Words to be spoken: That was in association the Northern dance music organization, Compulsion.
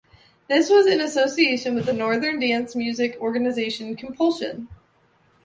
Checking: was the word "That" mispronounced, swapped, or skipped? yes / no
yes